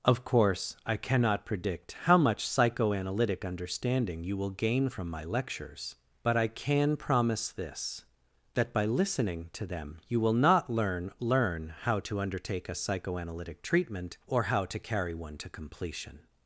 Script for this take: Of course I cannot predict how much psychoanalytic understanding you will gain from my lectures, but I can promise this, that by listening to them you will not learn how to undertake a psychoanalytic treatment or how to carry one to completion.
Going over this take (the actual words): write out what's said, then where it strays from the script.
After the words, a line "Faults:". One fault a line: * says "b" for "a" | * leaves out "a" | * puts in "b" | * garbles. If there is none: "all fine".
Of course I cannot predict how much psychoanalytic understanding you will gain from my lectures, but I can promise this, that by listening to them you will not learn learn how to undertake a psychoanalytic treatment or how to carry one to completion.
Faults:
* puts in "learn"